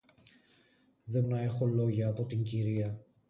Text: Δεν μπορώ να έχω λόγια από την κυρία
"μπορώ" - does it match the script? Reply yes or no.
no